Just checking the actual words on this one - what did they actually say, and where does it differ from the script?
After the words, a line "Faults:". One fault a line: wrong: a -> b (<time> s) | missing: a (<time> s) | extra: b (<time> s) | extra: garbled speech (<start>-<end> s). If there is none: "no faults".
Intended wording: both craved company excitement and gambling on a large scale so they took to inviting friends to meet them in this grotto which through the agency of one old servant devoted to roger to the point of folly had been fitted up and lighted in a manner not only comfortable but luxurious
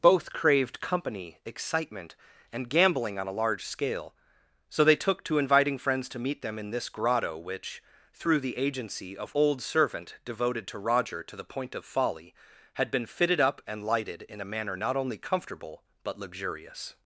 both craved company excitement and gambling on a large scale so they took to inviting friends to meet them in this grotto which through the agency of old servant devoted to roger to the point of folly had been fitted up and lighted in a manner not only comfortable but luxurious
Faults:
missing: one (9.3 s)